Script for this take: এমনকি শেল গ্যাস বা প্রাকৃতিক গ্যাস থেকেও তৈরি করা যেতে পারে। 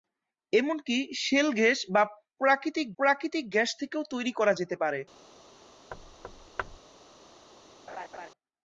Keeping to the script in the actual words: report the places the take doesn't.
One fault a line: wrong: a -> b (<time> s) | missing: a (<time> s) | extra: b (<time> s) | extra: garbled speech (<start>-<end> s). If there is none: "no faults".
extra: প্রাকৃতিক (3.0 s)